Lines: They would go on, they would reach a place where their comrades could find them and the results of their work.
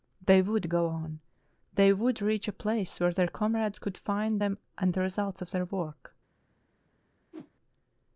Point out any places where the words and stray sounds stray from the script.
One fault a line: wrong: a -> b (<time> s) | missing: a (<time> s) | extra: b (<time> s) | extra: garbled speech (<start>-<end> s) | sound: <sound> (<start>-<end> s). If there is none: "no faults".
sound: whoosh (7.3-7.5 s)